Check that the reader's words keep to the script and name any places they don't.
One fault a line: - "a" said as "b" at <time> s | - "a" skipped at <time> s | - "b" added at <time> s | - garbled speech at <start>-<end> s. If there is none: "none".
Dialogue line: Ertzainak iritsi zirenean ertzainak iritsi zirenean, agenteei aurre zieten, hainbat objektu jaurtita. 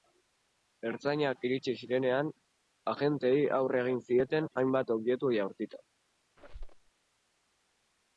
- "ertzainak iritsi zirenean" skipped at 2.3 s
- "egin" added at 3.8 s